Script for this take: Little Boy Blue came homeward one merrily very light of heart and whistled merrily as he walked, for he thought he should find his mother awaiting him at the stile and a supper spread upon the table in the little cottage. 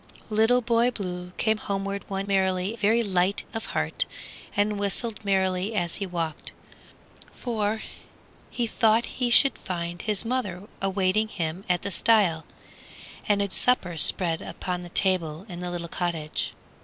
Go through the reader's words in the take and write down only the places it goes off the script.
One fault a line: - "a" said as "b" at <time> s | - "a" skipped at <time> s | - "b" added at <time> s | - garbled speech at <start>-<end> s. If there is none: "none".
none